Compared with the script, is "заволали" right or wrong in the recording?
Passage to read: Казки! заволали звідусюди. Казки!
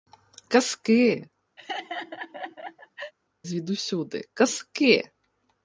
wrong